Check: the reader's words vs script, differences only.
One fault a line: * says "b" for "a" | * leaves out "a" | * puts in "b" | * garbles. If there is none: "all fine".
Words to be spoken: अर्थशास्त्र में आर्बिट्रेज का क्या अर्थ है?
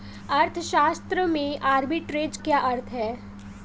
* leaves out "का"